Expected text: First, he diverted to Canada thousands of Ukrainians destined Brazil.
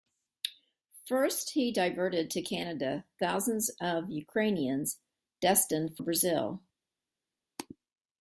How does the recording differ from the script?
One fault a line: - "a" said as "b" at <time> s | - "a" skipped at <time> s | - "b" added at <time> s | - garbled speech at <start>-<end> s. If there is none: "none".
none